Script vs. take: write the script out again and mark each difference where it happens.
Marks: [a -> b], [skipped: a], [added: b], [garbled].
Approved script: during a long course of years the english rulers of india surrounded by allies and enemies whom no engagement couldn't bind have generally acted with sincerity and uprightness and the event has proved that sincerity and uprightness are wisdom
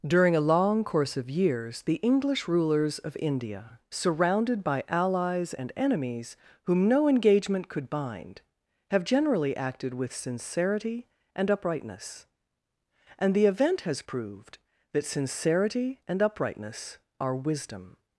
during a long course of years the english rulers of india surrounded by allies and enemies whom no engagement [couldn't -> could] bind have generally acted with sincerity and uprightness and the event has proved that sincerity and uprightness are wisdom